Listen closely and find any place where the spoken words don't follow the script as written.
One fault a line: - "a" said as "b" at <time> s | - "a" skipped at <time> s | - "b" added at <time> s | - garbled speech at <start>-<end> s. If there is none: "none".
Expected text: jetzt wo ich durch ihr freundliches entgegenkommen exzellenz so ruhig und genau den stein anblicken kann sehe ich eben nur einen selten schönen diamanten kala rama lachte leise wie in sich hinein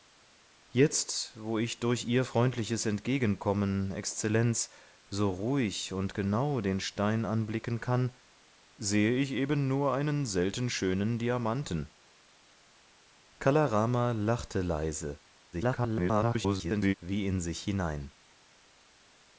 - garbled speech at 15.5-16.9 s